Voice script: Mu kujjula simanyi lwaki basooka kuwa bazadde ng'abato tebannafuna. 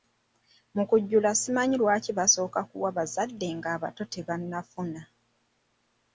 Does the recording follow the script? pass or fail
pass